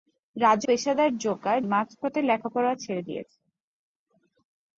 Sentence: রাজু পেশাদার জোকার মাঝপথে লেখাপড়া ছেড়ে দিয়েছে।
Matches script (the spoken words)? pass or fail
pass